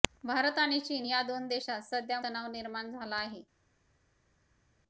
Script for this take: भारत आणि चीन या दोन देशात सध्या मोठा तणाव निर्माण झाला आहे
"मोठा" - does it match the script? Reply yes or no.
no